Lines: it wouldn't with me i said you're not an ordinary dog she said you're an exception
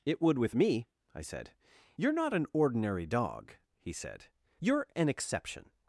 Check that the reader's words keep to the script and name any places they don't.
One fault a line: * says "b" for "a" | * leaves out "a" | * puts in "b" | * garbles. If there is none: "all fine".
* says "would" for "wouldn't"
* says "he" for "she"